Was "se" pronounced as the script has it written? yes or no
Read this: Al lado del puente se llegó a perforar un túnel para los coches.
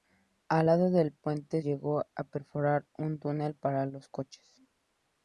no